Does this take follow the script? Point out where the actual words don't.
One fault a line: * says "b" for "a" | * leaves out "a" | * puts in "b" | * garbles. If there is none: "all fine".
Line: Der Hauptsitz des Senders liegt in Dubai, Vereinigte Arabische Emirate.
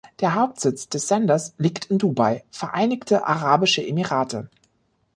all fine